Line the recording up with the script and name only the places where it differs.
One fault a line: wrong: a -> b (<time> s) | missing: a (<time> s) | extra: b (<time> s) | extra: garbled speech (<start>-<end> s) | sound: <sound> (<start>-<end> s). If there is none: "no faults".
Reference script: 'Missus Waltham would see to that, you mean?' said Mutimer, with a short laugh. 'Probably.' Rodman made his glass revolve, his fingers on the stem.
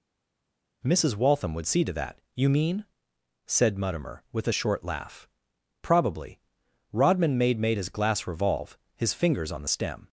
extra: made (7.6 s)